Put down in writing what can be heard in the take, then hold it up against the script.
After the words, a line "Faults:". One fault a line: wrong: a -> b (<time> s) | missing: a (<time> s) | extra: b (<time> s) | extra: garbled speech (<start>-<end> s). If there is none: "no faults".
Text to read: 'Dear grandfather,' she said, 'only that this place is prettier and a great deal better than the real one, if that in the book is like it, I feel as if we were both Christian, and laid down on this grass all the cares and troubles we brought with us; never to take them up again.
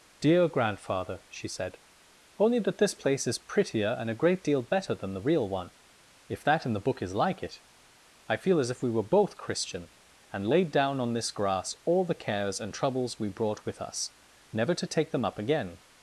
'Dear grandfather,' she said, 'only that this place is prettier and a great deal better than the real one, if that in the book is like it, I feel as if we were both Christian, and laid down on this grass all the cares and troubles we brought with us; never to take them up again.
Faults:
no faults